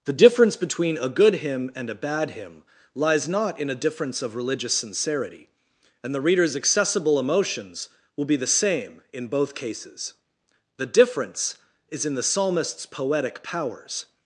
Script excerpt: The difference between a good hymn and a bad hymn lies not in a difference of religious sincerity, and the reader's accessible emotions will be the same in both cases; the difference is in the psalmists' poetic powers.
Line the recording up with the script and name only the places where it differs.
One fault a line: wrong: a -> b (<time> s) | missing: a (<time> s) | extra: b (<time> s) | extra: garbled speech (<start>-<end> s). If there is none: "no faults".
no faults